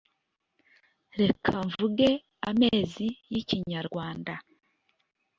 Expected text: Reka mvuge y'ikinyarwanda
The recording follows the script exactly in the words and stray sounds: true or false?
false